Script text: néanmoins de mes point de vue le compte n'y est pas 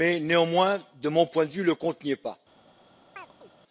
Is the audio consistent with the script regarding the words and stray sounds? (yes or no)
no